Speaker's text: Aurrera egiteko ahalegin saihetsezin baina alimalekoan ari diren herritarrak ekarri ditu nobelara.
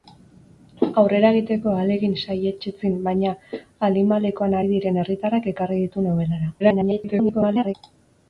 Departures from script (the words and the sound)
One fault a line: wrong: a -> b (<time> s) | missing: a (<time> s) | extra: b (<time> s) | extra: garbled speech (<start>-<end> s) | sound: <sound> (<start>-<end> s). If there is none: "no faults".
extra: garbled speech (6.6-7.7 s)